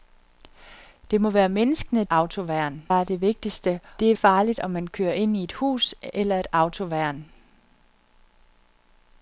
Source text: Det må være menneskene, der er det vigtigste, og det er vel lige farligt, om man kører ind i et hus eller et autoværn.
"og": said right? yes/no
no